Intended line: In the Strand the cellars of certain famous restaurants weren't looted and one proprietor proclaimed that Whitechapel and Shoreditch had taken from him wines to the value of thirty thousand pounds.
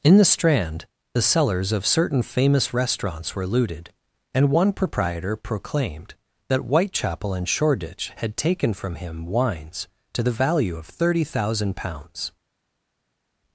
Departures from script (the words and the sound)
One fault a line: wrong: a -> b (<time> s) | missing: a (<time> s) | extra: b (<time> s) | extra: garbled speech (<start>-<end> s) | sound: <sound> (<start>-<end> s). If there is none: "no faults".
wrong: weren't -> were (3.4 s)